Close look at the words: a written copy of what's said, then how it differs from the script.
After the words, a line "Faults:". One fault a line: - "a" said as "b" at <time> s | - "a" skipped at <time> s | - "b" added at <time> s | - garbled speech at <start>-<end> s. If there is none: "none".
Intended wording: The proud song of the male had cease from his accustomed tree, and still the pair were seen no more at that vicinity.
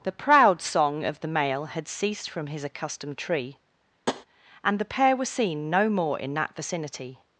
The proud song of the male had ceased from his accustomed tree, and the pair were seen no more in that vicinity.
Faults:
- "cease" said as "ceased" at 1.9 s
- "still" skipped at 4.8 s
- "at" said as "in" at 6.2 s